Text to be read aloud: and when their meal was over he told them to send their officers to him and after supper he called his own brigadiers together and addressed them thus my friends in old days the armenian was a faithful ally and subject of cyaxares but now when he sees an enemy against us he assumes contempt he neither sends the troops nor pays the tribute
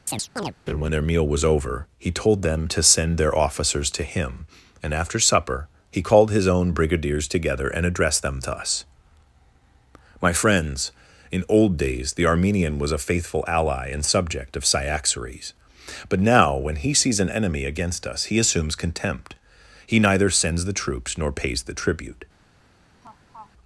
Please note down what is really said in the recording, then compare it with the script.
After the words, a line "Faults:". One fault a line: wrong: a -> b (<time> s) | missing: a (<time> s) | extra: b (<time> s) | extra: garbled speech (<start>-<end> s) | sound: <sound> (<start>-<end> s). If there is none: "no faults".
and when their meal was over he told them to send their officers to him and after supper he called his own brigadiers together and addressed them thus my friends in old days the armenian was a faithful ally and subject of cyaxares but now when he sees an enemy against us he assumes contempt he neither sends the troops nor pays the tribute
Faults:
sound: chirp (0.1-0.5 s)
sound: laugh (23.0-23.5 s)